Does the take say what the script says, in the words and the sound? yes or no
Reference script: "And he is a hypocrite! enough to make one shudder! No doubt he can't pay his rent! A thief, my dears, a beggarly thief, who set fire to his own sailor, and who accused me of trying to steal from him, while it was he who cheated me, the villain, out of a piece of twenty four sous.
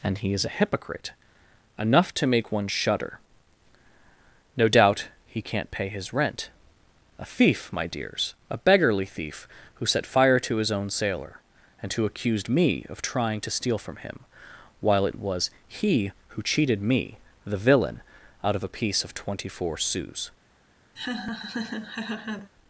no